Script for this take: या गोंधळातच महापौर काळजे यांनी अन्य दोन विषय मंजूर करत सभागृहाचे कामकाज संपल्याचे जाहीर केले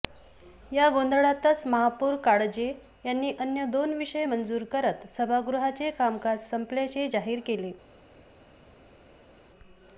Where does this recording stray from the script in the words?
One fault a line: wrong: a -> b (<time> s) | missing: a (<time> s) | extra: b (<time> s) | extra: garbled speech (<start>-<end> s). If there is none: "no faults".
no faults